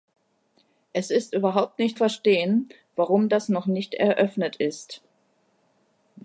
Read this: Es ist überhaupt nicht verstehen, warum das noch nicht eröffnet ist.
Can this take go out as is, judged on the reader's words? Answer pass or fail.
pass